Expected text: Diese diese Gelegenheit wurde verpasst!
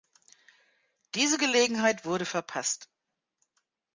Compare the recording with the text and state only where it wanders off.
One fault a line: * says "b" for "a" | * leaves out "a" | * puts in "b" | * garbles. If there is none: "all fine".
* leaves out "diese"